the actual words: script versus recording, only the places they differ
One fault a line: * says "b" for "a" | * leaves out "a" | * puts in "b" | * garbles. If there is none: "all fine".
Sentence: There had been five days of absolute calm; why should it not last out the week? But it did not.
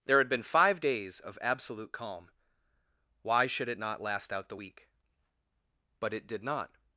all fine